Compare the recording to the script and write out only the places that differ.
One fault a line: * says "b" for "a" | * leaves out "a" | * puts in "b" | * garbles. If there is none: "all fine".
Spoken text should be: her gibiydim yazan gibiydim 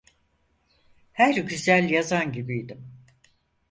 * says "güzel" for "gibiydim"